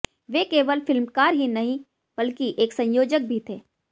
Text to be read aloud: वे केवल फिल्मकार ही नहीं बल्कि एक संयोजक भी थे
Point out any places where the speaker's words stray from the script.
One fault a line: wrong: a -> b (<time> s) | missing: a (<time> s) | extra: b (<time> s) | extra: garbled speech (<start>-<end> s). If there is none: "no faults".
no faults